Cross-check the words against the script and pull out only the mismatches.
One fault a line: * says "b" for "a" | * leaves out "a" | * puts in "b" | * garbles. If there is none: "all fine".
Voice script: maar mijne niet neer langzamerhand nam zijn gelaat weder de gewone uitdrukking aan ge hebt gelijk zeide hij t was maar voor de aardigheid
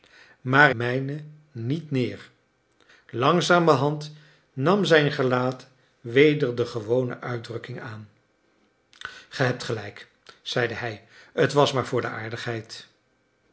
all fine